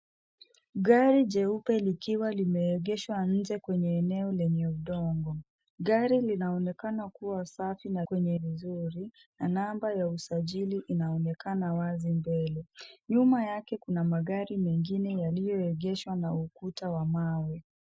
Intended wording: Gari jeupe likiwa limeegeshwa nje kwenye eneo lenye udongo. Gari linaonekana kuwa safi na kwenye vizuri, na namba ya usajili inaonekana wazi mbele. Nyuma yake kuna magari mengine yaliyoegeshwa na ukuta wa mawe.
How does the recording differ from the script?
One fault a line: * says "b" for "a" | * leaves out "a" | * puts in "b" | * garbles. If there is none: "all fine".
all fine